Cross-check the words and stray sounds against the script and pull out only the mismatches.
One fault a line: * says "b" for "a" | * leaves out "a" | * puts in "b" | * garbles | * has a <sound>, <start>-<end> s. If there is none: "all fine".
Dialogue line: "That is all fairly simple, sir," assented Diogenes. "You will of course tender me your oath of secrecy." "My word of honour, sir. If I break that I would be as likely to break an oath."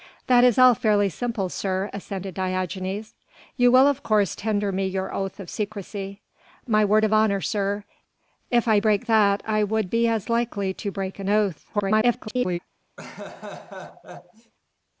* garbles
* has a laugh, 13.0-14.5 s